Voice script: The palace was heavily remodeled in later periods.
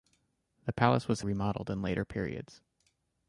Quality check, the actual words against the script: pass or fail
fail